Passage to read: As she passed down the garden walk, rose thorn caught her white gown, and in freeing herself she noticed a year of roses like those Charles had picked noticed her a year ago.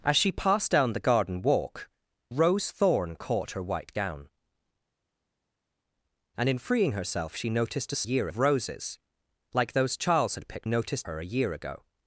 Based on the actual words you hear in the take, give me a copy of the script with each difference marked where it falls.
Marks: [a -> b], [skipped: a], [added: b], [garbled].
As she passed down the garden walk, rose thorn caught her white gown, and in freeing herself she noticed a year of roses like those Charles had picked noticed her a year ago.